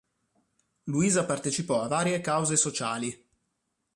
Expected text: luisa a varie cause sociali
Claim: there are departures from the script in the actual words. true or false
true